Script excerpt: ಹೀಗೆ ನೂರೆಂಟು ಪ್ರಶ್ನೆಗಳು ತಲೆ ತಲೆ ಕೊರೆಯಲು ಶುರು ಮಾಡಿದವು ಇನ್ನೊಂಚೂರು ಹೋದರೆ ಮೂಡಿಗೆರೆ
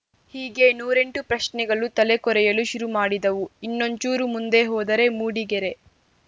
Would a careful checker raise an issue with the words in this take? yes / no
yes